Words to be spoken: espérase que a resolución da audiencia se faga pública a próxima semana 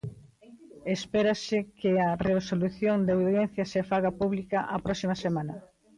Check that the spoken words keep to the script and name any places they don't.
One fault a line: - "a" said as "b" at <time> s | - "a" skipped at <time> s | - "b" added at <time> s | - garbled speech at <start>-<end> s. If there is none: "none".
none